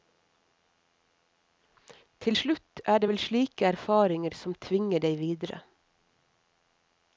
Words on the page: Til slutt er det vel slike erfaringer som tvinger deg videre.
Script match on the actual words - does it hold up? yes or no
yes